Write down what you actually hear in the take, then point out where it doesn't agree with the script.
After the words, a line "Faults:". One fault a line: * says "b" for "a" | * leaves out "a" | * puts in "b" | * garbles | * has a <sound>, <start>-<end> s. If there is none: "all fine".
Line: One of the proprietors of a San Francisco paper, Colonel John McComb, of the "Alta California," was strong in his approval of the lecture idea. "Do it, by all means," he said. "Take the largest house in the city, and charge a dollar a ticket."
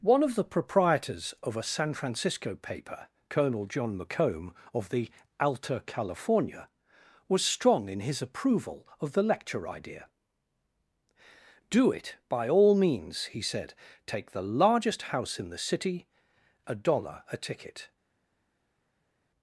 One of the proprietors of a San Francisco paper, Colonel John McComb, of the "Alta California," was strong in his approval of the lecture idea. "Do it, by all means," he said. "Take the largest house in the city, a dollar a ticket."
Faults:
* leaves out "and charge"